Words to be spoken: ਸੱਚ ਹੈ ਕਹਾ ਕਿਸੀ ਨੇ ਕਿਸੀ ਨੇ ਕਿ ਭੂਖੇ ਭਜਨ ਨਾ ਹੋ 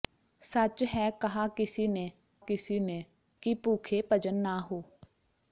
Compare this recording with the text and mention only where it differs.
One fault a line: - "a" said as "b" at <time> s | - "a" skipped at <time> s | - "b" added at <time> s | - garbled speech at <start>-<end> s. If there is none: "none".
none